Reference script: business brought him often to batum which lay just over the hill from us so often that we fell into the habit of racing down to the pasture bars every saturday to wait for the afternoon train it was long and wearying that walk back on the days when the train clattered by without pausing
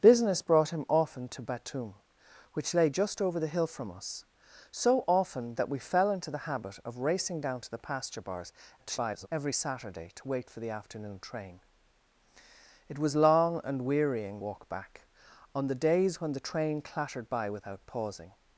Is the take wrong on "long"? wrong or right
right